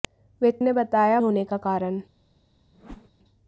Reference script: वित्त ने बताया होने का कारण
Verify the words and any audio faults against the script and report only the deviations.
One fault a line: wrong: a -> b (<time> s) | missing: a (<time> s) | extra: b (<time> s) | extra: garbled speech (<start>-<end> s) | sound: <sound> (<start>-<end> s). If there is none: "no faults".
sound: whoosh (2.7-3.1 s)